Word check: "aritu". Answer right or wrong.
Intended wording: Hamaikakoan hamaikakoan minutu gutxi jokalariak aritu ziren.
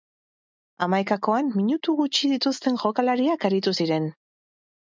right